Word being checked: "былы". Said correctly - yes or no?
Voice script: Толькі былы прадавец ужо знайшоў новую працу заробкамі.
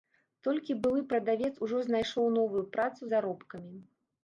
yes